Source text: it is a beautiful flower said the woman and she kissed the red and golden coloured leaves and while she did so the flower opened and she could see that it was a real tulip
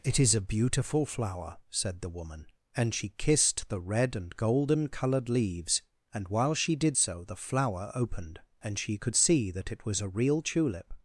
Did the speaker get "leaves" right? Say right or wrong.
right